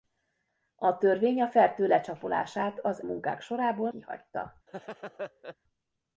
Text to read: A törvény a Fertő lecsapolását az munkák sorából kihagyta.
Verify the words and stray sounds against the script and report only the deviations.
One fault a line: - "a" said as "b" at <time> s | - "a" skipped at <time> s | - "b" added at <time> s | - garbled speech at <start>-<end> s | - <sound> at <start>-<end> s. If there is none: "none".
- laugh at 4.7-5.6 s